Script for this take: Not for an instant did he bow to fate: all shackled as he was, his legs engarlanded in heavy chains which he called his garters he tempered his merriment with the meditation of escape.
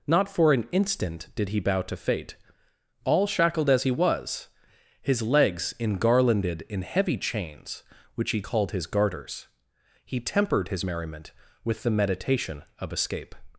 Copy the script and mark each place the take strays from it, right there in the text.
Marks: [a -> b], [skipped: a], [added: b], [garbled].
Not for an instant did he bow to fate: all shackled as he was, his legs engarlanded in heavy chains which he called his garters he tempered his merriment with the meditation of escape.